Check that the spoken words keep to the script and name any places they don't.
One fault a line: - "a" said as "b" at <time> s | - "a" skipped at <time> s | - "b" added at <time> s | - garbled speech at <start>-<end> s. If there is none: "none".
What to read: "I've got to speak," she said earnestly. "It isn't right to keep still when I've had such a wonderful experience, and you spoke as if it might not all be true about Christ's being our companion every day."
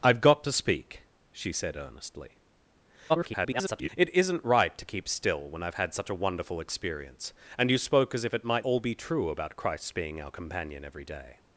- garbled speech at 3.1-3.9 s
- "not" skipped at 8.7 s